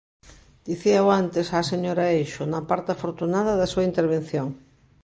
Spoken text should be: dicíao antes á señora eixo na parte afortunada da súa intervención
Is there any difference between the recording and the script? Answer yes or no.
no